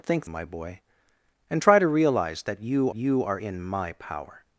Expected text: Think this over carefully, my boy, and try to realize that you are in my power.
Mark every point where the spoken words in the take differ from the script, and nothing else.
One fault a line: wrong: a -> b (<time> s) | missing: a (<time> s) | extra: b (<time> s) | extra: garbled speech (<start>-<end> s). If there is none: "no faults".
missing: this over carefully (0.3 s)
extra: you (2.9 s)